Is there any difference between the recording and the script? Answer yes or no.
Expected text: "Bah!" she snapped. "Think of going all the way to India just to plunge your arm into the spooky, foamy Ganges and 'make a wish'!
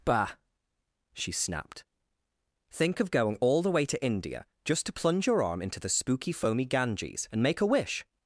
no